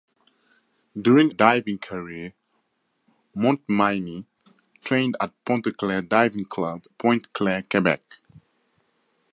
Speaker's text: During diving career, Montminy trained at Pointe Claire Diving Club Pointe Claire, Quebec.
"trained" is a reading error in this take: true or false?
false